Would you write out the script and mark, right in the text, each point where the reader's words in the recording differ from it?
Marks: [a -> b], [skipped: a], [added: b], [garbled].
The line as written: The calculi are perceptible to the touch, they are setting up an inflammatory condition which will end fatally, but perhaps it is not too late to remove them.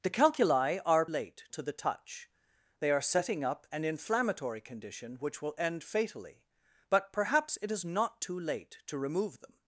The calculi are [perceptible -> late] to the touch, they are setting up an inflammatory condition which will end fatally, but perhaps it is not too late to remove them.